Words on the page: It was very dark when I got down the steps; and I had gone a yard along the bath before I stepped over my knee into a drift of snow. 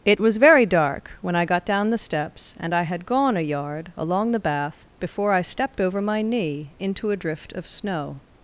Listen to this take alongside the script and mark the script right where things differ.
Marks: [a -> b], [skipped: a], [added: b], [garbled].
It was very dark when I got down the steps; and I had gone a yard along the bath before I stepped over my knee into a drift of snow.